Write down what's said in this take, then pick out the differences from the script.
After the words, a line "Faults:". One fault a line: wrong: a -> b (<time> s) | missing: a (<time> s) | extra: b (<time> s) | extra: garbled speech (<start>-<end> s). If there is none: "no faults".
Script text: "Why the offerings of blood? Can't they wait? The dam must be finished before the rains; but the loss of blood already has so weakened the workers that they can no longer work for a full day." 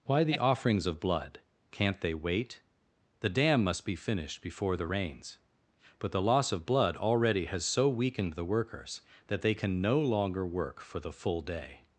"Why the offerings of blood? Can't they wait? The dam must be finished before the rains; but the loss of blood already has so weakened the workers that they can no longer work for the full day."
Faults:
wrong: a -> the (11.0 s)